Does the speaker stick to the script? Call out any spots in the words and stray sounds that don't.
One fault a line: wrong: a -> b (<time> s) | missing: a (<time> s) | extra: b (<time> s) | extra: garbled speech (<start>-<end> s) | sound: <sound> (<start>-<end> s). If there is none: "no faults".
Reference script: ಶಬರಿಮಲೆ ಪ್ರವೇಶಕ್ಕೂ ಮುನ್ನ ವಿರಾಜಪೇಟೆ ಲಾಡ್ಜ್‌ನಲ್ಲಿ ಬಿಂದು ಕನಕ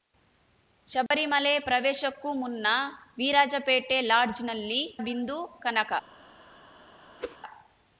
sound: dropout (1.1-1.1 s)
sound: whoosh (7.2-7.4 s)